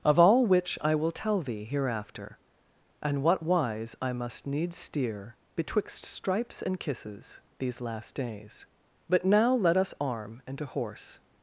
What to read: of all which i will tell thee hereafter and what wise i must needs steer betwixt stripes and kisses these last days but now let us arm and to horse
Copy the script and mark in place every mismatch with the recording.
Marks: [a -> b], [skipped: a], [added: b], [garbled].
of all which i will tell thee hereafter and what wise i must needs steer betwixt stripes and kisses these last days but now let us arm and to horse